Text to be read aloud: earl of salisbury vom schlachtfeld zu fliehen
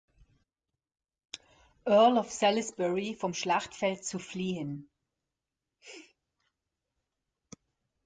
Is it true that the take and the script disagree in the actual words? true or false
false